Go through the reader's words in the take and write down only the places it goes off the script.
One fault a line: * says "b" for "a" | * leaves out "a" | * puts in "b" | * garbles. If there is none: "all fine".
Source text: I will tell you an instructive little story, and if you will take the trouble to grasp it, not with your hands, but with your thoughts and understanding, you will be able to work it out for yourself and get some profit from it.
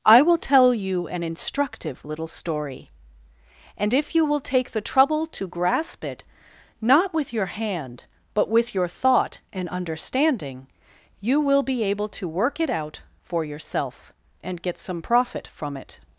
* says "hand" for "hands"
* says "thought" for "thoughts"